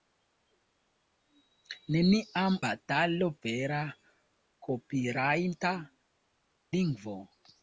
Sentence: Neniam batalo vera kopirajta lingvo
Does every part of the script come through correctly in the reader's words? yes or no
yes